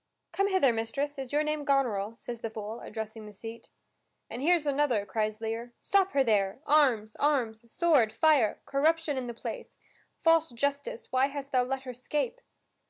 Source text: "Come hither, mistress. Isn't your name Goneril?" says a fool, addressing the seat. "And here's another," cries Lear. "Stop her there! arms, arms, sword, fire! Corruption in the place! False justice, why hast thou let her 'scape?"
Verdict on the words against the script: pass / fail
fail